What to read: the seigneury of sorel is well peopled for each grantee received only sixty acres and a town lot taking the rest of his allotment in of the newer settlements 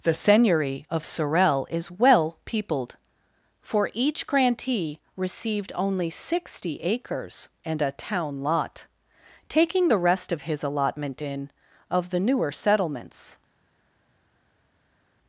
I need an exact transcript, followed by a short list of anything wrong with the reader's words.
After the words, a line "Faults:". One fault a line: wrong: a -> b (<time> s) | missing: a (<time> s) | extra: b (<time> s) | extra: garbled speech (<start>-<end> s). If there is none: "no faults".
the seigneury of sorel is well peopled for each grantee received only sixty acres and a town lot taking the rest of his allotment in of the newer settlements
Faults:
no faults